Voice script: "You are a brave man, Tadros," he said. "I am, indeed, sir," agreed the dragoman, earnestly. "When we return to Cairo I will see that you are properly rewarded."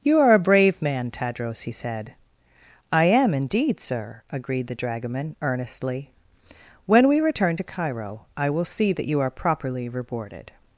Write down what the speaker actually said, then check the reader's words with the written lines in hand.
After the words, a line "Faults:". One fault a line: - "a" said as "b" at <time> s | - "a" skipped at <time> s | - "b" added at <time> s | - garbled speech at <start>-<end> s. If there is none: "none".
"You are a brave man, Tadros," he said. "I am, indeed, sir," agreed the dragoman, earnestly. "When we return to Cairo I will see that you are properly rewarded."
Faults:
none